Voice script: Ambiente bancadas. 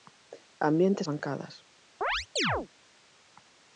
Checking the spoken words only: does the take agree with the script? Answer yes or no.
yes